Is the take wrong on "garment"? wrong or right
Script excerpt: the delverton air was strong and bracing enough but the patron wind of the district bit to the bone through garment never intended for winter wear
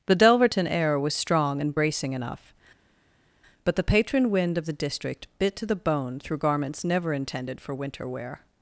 wrong